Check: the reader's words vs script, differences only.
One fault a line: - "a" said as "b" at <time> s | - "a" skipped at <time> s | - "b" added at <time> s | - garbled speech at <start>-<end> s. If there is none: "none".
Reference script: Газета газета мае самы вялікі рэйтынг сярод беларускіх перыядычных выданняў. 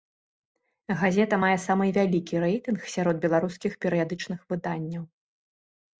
- "газета" skipped at 1.4 s